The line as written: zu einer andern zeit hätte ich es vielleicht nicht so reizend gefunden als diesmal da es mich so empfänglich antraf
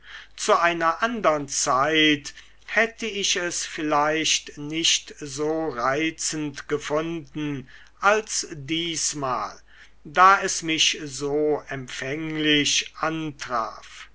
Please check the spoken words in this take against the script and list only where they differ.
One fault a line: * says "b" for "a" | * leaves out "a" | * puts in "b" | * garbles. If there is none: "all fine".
all fine